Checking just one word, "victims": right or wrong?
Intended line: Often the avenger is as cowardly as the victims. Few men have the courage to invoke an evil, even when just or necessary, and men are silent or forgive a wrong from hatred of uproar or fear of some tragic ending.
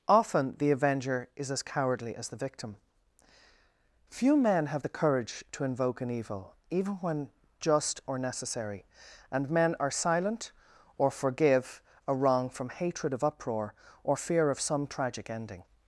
wrong